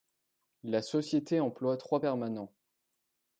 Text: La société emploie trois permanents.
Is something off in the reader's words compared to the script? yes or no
no